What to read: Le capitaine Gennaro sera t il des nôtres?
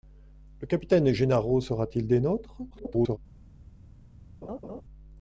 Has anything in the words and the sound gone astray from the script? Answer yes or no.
yes